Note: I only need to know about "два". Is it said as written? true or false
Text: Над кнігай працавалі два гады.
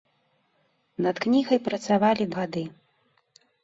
false